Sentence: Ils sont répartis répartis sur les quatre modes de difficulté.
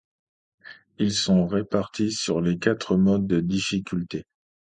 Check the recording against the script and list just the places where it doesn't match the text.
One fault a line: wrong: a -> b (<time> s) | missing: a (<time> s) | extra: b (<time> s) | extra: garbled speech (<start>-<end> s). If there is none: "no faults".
missing: répartis (2.1 s)